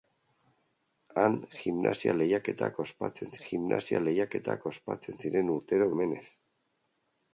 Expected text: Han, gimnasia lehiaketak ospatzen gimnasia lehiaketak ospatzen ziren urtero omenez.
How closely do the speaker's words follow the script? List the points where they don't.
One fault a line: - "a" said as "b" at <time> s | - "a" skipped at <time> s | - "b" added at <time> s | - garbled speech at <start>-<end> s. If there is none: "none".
none